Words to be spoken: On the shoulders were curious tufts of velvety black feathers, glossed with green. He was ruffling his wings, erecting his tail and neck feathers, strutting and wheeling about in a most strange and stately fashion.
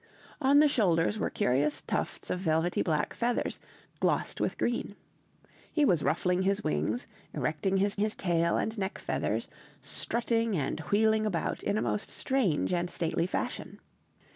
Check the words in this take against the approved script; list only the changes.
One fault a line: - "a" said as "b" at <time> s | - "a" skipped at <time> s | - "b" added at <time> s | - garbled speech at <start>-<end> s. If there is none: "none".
- "his" added at 8.0 s